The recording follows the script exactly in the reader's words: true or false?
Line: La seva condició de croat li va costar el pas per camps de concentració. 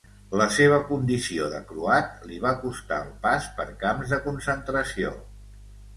true